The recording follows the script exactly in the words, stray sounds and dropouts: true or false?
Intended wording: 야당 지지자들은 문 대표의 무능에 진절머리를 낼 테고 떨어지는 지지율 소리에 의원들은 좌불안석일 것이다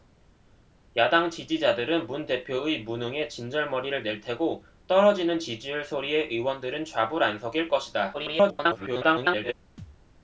false